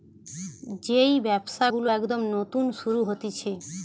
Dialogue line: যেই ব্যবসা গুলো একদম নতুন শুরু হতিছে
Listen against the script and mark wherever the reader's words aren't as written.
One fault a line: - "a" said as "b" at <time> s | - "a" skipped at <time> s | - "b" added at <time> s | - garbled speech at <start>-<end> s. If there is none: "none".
none